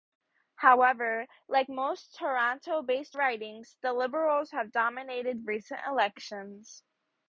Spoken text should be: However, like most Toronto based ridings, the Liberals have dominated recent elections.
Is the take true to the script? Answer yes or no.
yes